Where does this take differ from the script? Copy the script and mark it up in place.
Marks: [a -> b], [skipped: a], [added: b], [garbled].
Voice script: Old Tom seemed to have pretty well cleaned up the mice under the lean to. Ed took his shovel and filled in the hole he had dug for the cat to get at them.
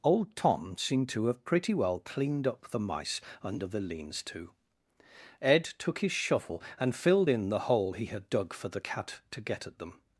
Old Tom seemed to have pretty well cleaned up the mice under the [lean -> leans] to. Ed took his shovel and filled in the hole he had dug for the cat to get at them.